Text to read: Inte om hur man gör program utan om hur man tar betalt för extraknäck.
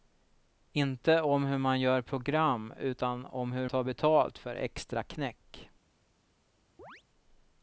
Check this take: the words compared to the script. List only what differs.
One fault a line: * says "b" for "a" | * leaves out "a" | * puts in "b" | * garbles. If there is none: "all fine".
* leaves out "man"